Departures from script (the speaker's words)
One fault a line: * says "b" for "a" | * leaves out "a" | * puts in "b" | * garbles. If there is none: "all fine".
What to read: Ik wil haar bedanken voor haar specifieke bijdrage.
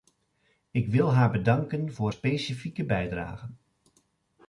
* leaves out "haar"